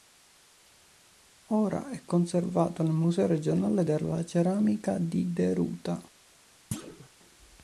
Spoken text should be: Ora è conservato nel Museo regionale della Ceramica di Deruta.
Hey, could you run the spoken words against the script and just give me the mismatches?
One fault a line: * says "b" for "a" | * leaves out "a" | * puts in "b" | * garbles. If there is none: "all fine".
all fine